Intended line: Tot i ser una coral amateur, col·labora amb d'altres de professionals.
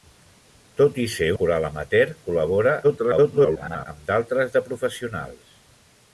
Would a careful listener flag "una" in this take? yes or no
yes